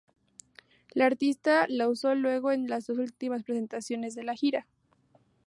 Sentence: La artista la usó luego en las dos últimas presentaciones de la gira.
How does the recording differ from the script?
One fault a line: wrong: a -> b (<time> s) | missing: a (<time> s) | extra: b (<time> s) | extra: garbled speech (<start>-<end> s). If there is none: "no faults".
no faults